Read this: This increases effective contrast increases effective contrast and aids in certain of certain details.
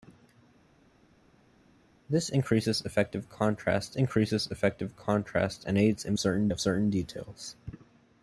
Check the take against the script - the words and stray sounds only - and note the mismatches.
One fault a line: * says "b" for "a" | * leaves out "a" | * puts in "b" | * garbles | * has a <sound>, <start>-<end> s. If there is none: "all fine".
all fine